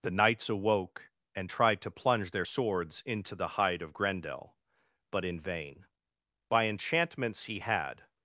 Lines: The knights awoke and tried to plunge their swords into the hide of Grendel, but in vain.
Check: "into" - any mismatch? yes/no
no